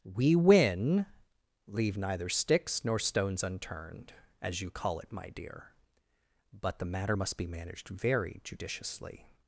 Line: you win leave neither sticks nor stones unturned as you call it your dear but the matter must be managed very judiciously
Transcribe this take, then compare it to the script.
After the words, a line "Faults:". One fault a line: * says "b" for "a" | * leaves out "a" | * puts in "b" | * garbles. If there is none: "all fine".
we win leave neither sticks nor stones unturned as you call it my dear but the matter must be managed very judiciously
Faults:
* says "we" for "you"
* says "my" for "your"